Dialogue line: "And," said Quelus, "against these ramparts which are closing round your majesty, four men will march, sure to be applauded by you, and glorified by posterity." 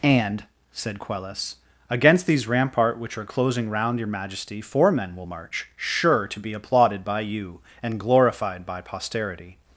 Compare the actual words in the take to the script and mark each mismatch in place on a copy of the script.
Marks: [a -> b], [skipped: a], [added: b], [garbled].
"And," said Quelus, "against these [ramparts -> rampart] which are closing round your majesty, four men will march, sure to be applauded by you, and glorified by posterity."